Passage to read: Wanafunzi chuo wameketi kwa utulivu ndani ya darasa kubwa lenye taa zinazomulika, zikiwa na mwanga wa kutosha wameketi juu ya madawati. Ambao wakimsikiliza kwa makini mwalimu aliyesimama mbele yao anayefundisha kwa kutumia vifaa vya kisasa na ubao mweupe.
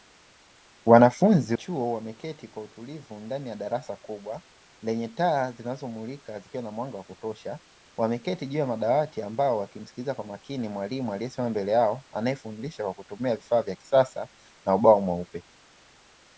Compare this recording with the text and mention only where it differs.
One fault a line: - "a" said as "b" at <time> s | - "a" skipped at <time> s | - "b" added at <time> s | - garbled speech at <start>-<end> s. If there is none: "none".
none